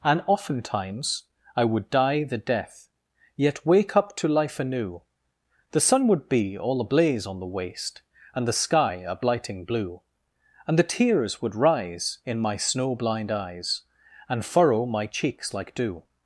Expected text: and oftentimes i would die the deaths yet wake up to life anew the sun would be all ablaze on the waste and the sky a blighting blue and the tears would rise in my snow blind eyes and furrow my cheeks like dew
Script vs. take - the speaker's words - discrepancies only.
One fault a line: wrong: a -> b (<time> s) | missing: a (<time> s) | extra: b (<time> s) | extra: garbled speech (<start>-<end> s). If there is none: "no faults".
wrong: deaths -> death (2.4 s)